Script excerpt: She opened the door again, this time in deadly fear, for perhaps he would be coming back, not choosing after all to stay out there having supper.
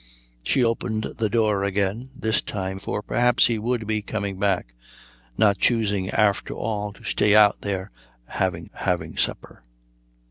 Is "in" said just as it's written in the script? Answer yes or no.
no